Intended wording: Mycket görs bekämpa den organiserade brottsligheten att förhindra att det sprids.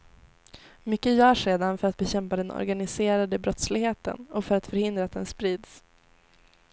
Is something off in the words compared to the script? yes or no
yes